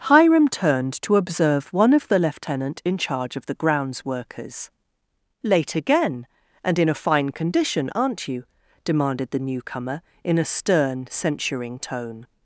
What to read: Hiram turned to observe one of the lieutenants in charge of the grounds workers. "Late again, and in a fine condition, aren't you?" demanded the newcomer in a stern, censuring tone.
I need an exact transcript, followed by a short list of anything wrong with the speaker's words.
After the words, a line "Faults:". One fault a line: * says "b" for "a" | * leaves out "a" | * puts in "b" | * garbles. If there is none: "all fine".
Hiram turned to observe one of the lieutenant in charge of the grounds workers. "Late again, and in a fine condition, aren't you?" demanded the newcomer in a stern, censuring tone.
Faults:
* says "lieutenant" for "lieutenants"